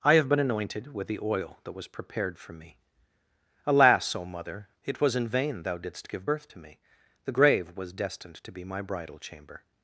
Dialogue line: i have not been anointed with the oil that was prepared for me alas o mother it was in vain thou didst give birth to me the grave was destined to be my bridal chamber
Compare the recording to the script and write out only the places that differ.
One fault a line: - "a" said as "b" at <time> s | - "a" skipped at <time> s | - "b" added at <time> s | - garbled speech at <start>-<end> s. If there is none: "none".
- "not" skipped at 0.3 s